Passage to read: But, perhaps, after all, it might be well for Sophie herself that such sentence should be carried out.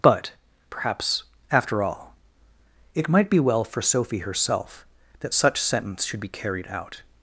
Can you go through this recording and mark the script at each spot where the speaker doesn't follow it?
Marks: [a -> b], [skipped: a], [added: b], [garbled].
But, perhaps, after all, it might be well for Sophie herself that such sentence should be carried out.